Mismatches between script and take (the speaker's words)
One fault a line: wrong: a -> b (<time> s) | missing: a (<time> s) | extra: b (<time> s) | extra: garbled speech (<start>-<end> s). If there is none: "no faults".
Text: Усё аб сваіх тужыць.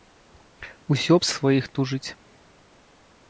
no faults